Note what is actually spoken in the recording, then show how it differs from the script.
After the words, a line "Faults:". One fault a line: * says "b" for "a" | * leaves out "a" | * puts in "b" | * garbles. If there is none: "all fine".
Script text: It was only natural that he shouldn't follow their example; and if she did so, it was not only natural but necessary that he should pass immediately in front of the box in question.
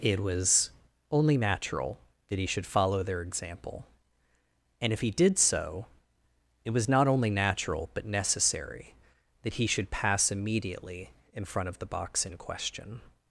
It was only natural that he should follow their example; and if he did so, it was not only natural but necessary that he should pass immediately in front of the box in question.
Faults:
* says "should" for "shouldn't"
* says "he" for "she"